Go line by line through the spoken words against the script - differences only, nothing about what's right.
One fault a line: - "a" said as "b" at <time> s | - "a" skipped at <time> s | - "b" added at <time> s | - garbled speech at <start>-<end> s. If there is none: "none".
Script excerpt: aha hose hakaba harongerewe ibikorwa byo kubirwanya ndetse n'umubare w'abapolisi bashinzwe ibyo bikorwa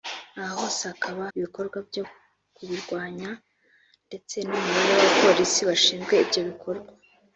- "harongerewe" skipped at 1.2 s